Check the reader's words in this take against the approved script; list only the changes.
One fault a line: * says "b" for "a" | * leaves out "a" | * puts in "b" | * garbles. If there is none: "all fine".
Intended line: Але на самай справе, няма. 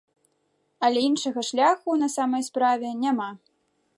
* puts in "іншага шляху"